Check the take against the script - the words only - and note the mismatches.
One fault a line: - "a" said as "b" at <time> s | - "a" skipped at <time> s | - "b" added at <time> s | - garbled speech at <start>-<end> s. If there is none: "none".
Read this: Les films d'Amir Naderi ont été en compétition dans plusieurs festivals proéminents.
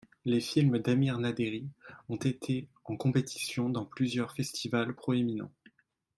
none